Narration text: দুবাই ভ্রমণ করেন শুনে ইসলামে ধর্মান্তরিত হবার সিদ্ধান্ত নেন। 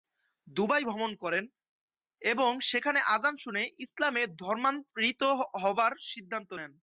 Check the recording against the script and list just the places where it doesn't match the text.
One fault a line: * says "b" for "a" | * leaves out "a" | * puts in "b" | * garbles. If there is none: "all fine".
* puts in "এবং সেখানে আযান"